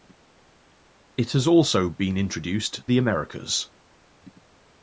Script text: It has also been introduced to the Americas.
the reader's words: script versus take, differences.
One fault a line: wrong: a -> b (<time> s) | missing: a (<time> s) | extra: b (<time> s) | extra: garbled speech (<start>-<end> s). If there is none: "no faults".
missing: to (2.9 s)